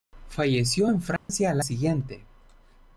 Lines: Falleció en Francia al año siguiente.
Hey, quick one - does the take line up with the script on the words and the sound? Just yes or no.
no